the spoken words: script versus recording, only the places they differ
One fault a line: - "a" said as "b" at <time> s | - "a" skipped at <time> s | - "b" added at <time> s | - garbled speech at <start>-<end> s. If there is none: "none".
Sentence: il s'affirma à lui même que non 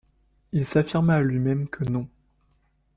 none